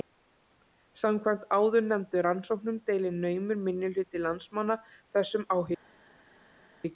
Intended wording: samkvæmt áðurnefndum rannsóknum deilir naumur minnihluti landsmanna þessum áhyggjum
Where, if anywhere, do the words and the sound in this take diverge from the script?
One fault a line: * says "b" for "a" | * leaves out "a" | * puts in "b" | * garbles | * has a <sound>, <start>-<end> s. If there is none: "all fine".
all fine